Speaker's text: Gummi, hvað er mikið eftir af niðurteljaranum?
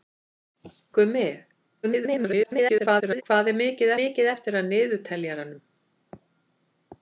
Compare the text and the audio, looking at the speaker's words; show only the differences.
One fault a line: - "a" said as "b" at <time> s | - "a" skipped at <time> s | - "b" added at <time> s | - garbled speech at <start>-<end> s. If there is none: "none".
- garbled speech at 1.8-3.2 s
- "mikið" added at 4.0 s